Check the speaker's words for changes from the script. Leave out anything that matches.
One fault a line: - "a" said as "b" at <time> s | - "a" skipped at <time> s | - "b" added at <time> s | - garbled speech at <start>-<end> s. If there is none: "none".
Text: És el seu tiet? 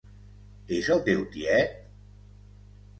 - "seu" said as "teu" at 1.1 s